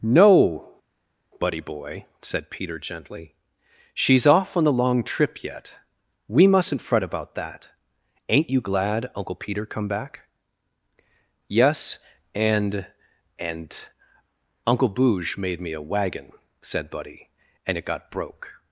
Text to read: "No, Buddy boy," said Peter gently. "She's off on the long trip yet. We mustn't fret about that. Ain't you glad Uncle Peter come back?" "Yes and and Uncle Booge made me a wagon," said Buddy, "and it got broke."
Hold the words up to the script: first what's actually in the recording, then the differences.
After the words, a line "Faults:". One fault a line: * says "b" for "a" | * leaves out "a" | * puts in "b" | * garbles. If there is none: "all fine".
"No, Buddy boy," said Peter gently. "She's off on the long trip yet. We mustn't fret about that. Ain't you glad Uncle Peter come back?" "Yes and and Uncle Booge made me a wagon," said Buddy, "and it got broke."
Faults:
all fine